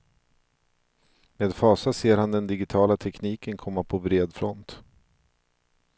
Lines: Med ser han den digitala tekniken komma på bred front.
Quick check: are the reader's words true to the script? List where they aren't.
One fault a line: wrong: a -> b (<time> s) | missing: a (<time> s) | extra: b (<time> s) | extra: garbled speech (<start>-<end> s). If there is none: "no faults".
extra: fasa (1.6 s)